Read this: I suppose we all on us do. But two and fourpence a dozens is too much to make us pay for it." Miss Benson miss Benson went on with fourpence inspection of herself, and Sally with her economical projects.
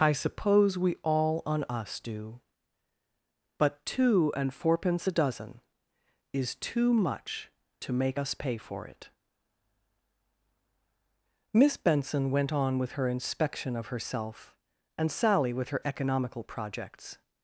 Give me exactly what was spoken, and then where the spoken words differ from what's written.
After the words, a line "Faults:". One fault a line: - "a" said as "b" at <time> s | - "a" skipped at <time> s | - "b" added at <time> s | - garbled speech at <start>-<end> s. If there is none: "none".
I suppose we all on us do. But two and fourpence a dozen is too much to make us pay for it." Miss Benson went on with her inspection of herself, and Sally with her economical projects.
Faults:
- "dozens" said as "dozen" at 5.1 s
- "miss Benson" skipped at 12.3 s
- "fourpence" said as "her" at 12.9 s